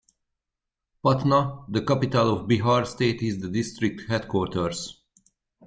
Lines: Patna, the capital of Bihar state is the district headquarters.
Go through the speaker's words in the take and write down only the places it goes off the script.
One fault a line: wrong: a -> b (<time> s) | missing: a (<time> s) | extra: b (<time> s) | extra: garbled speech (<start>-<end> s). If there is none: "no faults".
no faults